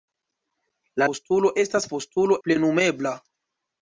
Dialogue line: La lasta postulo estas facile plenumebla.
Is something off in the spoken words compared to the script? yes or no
yes